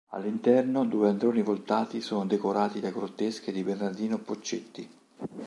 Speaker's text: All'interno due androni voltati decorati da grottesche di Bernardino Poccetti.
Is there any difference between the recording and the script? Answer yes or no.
yes